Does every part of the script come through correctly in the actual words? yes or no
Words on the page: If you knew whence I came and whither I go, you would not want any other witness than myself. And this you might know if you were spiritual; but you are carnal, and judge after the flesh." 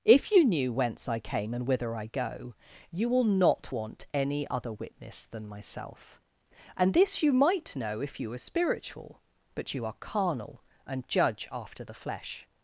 no